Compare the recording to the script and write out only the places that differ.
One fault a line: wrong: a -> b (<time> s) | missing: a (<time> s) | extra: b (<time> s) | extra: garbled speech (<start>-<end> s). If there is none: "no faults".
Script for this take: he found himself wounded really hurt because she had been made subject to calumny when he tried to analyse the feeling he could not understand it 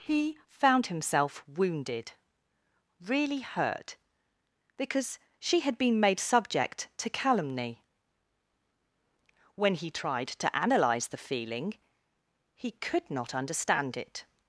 no faults